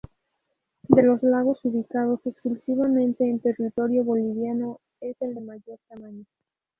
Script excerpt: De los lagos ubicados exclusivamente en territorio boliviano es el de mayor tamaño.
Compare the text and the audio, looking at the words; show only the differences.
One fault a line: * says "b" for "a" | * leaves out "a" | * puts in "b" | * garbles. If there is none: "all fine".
all fine